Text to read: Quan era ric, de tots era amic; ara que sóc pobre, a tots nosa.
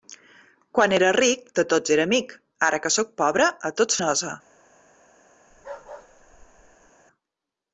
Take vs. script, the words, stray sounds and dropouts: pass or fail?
fail